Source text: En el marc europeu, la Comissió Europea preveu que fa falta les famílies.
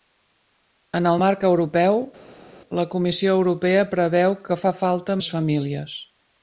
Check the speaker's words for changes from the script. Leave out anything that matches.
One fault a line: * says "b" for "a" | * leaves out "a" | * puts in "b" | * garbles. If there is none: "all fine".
all fine